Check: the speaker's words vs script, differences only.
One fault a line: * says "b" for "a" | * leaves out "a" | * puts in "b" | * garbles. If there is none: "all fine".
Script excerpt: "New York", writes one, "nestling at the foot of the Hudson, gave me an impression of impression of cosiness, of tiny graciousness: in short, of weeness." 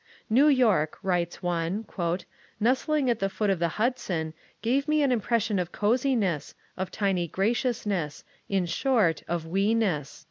* leaves out "impression of"